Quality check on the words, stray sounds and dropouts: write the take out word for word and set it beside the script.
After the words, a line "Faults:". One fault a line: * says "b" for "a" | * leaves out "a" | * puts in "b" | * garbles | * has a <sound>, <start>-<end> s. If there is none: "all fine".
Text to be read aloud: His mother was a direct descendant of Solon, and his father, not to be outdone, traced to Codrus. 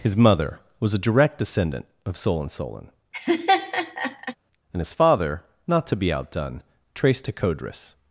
His mother was a direct descendant of Solon Solon, and his father, not to be outdone, traced to Codrus.
Faults:
* puts in "Solon"
* has a laugh, 3.1-4.4 s